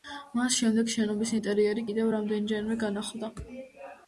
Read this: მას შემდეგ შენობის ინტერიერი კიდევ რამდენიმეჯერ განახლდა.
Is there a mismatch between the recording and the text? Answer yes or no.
no